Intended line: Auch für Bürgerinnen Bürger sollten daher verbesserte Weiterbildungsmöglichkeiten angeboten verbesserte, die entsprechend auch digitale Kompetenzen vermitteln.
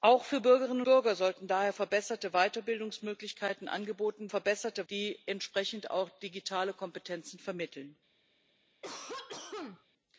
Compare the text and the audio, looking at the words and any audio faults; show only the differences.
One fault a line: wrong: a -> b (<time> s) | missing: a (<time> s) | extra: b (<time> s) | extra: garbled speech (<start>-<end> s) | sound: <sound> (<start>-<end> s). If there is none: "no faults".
sound: cough (8.8-9.9 s)